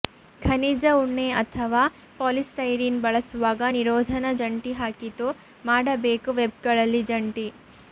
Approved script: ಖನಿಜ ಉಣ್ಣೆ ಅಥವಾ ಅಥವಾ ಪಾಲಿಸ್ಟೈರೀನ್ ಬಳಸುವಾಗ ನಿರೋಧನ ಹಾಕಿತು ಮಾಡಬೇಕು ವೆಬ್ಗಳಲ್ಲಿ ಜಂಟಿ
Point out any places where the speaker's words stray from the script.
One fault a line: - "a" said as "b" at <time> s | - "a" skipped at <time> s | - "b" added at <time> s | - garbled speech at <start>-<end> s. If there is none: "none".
- "ಅಥವಾ" skipped at 1.8 s
- "ಜಂಟಿ" added at 4.4 s